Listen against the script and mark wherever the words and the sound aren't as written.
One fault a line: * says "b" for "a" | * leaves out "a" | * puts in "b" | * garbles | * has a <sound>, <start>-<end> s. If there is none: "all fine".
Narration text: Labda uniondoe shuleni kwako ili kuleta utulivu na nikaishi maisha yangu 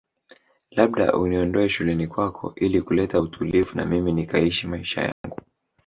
* puts in "mimi"
* has a dropout, 5.1-5.2 s